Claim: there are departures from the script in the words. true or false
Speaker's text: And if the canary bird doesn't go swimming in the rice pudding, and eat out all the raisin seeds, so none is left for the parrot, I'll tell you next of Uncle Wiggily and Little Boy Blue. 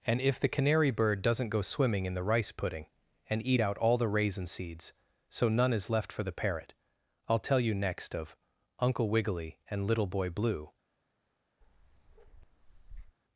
false